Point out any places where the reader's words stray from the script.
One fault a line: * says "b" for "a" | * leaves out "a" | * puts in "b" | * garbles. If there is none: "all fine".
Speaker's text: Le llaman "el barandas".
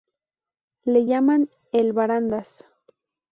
all fine